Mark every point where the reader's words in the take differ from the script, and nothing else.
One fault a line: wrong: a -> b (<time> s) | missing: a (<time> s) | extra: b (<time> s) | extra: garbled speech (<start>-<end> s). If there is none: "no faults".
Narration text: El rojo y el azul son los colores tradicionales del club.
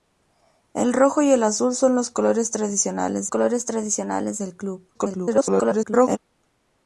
extra: colores tradicionales (3.3 s)
extra: garbled speech (4.9-6.2 s)